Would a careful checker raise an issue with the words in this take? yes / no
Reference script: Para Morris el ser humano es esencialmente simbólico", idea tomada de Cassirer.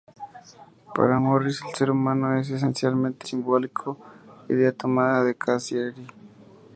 no